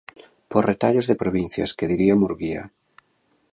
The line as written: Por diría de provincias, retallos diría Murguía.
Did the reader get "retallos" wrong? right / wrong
wrong